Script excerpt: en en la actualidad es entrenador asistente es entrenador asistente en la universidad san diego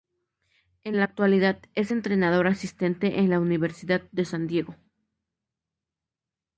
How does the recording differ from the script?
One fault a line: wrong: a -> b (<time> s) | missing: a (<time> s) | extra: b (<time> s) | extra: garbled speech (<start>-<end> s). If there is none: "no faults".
missing: en (1.0 s)
missing: es entrenador asistente (3.2 s)
extra: de (4.1 s)